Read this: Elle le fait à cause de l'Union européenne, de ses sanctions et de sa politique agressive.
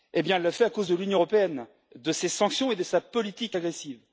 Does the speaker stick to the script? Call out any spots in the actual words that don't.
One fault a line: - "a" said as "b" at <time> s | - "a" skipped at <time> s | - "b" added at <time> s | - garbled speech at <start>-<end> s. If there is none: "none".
none